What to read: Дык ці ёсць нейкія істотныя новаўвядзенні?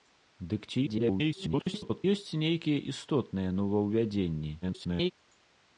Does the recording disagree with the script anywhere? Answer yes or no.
yes